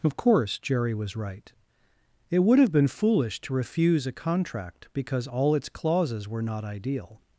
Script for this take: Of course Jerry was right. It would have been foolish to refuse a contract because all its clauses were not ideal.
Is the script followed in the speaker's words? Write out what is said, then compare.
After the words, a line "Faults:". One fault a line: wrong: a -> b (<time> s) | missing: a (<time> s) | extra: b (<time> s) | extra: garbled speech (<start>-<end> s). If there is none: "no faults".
Of course Jerry was right. It would have been foolish to refuse a contract because all its clauses were not ideal.
Faults:
no faults